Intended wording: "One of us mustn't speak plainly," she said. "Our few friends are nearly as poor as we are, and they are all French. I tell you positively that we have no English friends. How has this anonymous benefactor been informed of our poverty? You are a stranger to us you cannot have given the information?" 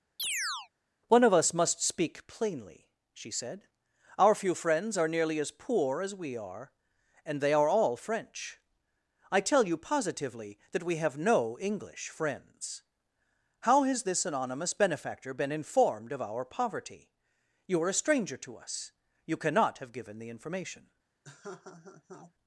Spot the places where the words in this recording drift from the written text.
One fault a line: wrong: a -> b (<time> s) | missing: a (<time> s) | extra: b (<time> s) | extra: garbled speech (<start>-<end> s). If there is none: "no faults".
wrong: mustn't -> must (1.5 s)